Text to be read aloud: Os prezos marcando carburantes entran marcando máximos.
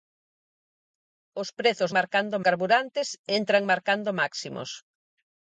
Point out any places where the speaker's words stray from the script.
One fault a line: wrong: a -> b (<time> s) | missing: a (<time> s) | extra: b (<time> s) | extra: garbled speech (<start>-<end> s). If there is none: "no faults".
no faults